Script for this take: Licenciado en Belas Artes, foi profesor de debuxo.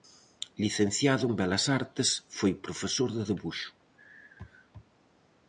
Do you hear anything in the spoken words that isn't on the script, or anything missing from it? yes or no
no